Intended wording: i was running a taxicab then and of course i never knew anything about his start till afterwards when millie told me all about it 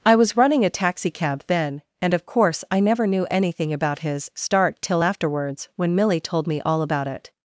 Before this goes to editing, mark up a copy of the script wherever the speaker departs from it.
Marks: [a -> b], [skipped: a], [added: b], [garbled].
i was running a taxicab then and of course i never knew anything about his start till afterwards when millie told me all about it